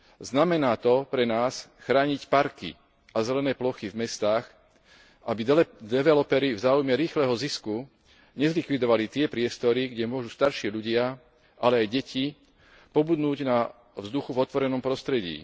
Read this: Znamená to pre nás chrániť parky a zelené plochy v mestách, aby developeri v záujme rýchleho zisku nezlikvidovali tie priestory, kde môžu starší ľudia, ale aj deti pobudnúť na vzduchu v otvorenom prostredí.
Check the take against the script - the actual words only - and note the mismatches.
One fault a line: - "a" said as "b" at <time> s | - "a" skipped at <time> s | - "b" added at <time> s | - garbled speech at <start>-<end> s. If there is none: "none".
none